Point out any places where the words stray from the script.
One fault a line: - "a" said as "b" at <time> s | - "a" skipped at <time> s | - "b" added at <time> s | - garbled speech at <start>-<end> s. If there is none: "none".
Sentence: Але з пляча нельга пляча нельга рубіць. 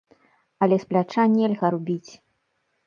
- "пляча нельга" skipped at 1.7 s